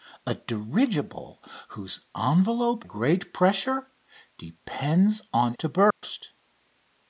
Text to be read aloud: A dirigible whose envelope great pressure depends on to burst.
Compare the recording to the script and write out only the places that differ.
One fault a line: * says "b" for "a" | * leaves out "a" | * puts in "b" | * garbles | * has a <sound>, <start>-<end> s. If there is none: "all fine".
* has a dropout, 5.9-6.0 s